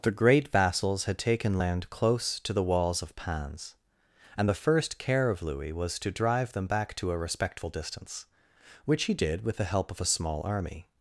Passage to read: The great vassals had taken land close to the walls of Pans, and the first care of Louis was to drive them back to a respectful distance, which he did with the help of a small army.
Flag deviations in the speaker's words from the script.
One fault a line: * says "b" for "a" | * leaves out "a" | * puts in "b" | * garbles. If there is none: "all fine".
all fine